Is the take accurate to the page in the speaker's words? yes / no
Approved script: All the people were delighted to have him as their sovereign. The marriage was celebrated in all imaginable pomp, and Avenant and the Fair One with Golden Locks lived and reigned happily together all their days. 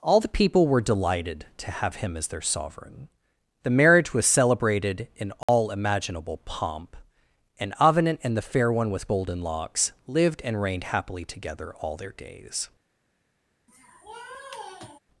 yes